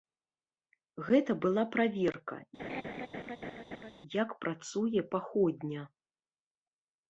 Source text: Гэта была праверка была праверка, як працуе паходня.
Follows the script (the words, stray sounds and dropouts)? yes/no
no